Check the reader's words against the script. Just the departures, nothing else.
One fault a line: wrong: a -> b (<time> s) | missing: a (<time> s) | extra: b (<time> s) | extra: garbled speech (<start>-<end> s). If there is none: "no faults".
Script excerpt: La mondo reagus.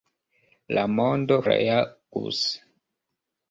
no faults